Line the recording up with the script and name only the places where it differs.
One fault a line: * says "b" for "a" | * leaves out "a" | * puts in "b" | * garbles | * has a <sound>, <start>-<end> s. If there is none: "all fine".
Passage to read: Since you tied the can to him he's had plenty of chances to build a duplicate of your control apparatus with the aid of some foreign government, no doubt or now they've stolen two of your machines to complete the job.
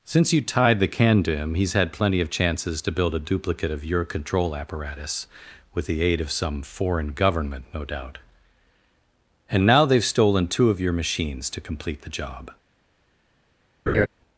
* says "and" for "or"
* has a laugh, 13.9-14.1 s